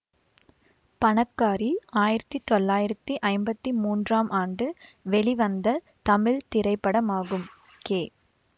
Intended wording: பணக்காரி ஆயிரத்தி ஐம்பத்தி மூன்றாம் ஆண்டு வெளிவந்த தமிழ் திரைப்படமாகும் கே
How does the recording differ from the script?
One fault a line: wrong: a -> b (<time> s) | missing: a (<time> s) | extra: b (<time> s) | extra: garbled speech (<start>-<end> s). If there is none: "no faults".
extra: தொள்ளாயிரத்தி (2.5 s)